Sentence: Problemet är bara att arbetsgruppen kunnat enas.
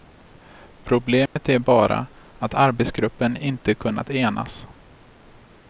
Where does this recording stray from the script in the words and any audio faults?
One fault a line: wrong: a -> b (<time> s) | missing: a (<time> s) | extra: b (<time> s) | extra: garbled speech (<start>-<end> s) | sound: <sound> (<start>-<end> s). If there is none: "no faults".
sound: dropout (1.3-1.4 s)
extra: inte (3.4 s)